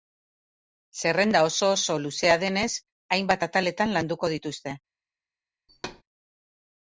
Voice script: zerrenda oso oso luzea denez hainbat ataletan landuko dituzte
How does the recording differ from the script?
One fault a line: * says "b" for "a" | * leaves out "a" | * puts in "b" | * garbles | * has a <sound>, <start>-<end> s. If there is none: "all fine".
* has a thud, 5.7-6.0 s